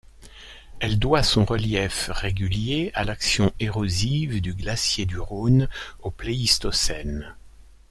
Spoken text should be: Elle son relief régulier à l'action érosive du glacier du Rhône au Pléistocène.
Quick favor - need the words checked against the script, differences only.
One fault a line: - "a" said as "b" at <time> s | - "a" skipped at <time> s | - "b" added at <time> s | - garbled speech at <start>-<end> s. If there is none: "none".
- "doit" added at 1.0 s